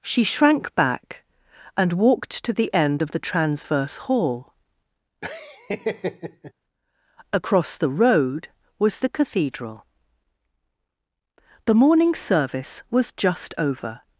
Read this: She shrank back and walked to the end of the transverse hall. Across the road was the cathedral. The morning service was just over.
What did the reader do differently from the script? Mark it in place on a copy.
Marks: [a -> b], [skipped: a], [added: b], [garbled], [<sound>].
She shrank back and walked to the end of the transverse hall. [laugh] Across the road was the cathedral. The morning service was just over.